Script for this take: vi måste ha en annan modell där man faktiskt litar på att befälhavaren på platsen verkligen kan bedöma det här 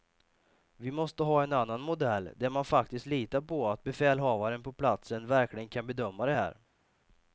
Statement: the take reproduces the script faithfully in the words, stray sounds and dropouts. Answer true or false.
true